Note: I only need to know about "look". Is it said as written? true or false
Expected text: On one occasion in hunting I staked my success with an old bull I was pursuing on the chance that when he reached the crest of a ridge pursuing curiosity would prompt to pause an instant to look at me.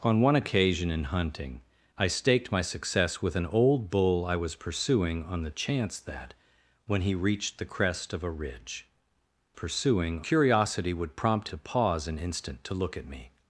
true